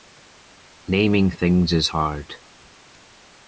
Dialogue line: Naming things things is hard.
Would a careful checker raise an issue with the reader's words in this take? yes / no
yes